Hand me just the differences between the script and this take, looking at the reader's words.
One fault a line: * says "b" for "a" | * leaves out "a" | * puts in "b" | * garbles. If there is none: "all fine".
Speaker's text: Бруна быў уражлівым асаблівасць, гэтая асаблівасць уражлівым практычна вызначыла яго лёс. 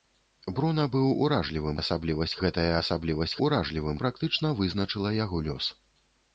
all fine